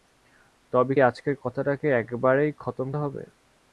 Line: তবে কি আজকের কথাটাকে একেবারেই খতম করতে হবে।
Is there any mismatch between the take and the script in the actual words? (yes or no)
yes